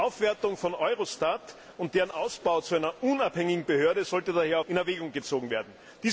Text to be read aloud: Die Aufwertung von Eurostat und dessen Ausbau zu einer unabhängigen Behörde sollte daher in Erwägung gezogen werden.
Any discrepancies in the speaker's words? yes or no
no